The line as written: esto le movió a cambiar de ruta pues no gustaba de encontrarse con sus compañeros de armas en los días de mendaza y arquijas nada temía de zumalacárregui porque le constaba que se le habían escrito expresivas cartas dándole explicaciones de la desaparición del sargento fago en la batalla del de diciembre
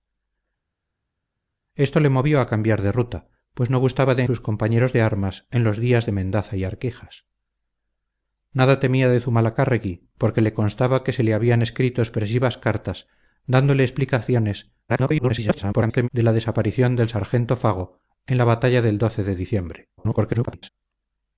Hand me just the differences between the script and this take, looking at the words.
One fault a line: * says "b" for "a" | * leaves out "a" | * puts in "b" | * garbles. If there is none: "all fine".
* leaves out "encontrarse con"
* garbles
* garbles